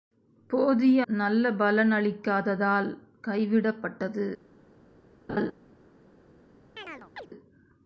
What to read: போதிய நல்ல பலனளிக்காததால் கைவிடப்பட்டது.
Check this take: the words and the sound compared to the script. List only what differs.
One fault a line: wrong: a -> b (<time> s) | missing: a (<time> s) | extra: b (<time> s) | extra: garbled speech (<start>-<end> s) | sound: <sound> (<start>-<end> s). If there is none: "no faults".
sound: laugh (5.3-5.5 s)
sound: chirp (6.8-7.3 s)